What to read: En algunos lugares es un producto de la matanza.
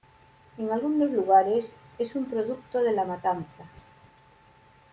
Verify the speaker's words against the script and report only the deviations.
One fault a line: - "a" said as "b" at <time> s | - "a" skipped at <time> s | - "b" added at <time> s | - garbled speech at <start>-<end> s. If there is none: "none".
none